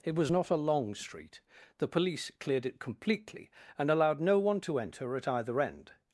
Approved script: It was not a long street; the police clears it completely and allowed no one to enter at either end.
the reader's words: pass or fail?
fail